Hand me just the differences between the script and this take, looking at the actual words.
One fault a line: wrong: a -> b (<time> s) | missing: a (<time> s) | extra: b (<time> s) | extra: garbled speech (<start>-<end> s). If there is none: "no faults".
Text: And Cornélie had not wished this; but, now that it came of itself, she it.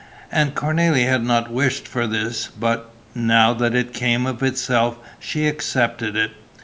extra: for (1.9 s)
extra: accepted (5.5 s)